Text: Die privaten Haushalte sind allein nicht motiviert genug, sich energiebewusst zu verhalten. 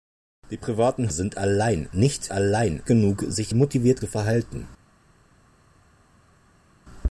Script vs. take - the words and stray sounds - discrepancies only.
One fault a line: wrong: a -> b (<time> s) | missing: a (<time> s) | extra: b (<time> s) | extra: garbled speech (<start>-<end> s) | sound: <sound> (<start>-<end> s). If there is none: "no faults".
missing: Haushalte (1.1 s)
wrong: motiviert -> allein (2.3 s)
wrong: energiebewusst -> motiviert (3.5 s)